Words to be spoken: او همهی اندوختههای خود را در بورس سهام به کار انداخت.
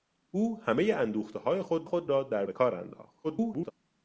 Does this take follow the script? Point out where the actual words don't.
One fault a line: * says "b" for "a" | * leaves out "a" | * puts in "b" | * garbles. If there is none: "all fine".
* puts in "خود"
* leaves out "بورس سهام"
* garbles